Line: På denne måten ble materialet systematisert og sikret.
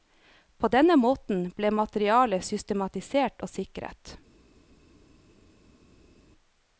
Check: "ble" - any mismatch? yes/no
no